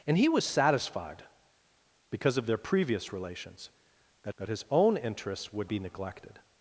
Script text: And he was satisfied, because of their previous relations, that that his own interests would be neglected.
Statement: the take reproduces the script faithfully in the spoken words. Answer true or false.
true